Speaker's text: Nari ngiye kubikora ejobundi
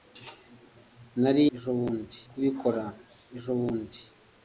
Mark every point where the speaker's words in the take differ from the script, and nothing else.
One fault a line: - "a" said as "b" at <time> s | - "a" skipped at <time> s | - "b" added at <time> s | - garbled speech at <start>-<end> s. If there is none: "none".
- "ngiye" said as "ejobundi" at 1.5 s